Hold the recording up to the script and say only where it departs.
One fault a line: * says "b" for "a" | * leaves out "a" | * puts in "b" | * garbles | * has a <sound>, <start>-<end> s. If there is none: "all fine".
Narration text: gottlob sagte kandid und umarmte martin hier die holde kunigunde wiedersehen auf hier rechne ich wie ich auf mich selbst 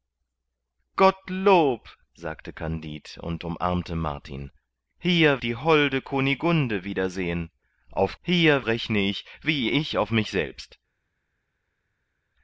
all fine